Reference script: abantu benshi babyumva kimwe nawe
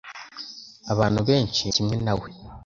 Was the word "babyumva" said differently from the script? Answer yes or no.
yes